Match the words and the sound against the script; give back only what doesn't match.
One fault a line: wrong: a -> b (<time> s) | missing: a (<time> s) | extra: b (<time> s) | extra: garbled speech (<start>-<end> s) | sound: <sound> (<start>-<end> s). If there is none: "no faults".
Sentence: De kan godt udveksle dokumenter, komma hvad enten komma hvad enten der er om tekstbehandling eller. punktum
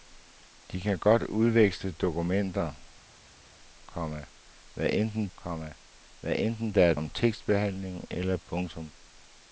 no faults